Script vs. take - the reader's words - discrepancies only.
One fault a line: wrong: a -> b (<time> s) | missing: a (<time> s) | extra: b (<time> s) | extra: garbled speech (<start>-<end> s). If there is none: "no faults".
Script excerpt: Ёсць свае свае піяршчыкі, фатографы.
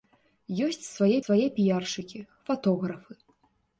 no faults